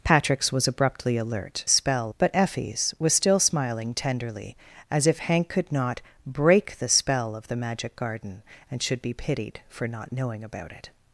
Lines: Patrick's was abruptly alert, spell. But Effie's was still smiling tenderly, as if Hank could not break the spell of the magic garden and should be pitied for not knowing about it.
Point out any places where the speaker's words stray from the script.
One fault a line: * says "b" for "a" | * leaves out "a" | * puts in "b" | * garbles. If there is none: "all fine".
all fine